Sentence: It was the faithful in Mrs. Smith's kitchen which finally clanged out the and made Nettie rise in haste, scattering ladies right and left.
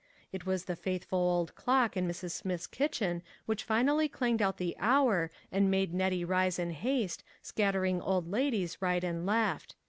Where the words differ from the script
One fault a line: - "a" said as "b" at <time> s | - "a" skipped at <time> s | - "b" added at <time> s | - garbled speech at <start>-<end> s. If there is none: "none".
- "old clock" added at 1.2 s
- "hour" added at 4.8 s
- "old" added at 8.0 s